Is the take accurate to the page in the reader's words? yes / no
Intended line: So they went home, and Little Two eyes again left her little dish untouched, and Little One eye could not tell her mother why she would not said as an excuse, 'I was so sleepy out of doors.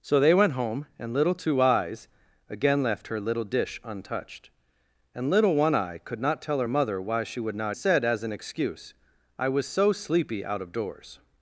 yes